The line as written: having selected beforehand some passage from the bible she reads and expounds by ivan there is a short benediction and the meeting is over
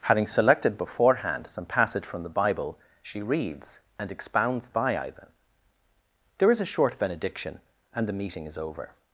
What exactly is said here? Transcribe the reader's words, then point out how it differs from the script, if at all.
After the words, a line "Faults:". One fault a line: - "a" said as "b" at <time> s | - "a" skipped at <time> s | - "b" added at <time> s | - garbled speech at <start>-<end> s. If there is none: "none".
having selected beforehand some passage from the bible she reads and expounds by ivan there is a short benediction and the meeting is over
Faults:
none